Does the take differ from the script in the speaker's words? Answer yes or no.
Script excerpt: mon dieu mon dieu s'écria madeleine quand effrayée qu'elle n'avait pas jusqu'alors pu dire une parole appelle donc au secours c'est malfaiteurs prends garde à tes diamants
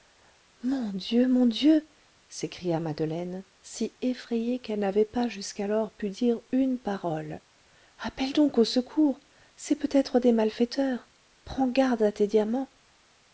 yes